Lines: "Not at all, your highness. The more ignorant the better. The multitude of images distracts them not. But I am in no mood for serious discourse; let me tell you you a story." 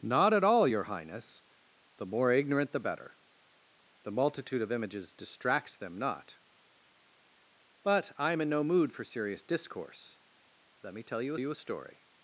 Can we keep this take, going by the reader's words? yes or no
yes